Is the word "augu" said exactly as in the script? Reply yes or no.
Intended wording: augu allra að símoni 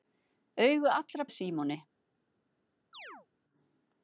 yes